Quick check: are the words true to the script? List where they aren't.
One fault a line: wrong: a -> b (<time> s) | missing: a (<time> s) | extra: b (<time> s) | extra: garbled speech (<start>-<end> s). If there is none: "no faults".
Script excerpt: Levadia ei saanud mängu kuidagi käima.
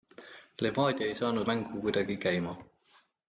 no faults